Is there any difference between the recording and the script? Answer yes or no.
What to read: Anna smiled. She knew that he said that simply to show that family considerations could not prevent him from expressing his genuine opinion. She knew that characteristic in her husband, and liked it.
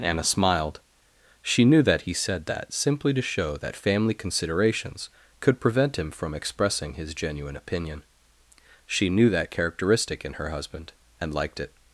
yes